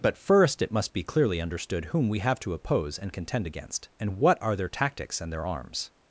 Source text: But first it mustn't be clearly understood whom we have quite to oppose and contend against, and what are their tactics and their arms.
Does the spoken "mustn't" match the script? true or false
false